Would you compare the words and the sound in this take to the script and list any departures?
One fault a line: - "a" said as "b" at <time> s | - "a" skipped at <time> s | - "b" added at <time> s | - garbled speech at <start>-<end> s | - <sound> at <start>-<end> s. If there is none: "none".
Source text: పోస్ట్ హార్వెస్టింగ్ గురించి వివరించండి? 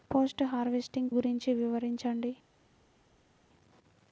none